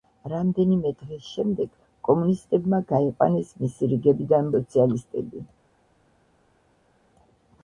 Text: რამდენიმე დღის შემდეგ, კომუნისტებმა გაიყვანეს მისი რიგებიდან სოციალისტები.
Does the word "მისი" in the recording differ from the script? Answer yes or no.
no